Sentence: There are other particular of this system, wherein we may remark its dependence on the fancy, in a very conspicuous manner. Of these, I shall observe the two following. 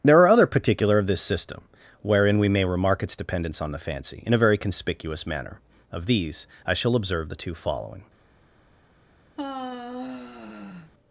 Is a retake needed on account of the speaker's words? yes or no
no